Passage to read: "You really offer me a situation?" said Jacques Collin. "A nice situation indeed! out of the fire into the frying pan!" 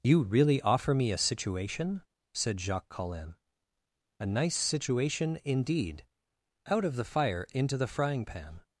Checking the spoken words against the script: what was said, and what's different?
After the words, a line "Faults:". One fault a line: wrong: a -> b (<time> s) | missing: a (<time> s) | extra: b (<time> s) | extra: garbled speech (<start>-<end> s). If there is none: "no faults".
"You really offer me a situation?" said Jacques Collin. "A nice situation indeed! out of the fire into the frying pan!"
Faults:
no faults